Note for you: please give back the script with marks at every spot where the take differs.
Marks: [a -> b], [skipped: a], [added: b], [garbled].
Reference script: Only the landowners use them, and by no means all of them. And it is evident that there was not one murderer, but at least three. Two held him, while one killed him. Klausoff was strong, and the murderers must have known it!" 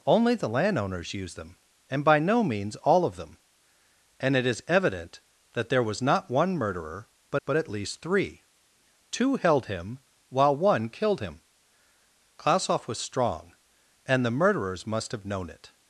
Only the landowners use them, and by no means all of them. And it is evident that there was not one murderer, but [added: but] at least three. Two held him, while one killed him. Klausoff was strong, and the murderers must have known it!"